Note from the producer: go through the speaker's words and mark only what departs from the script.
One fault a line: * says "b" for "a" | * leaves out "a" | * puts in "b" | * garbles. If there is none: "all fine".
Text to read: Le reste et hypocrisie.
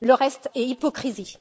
all fine